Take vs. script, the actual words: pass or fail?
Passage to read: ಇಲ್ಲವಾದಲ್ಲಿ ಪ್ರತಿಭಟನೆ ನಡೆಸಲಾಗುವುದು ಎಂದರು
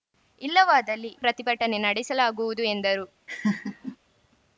pass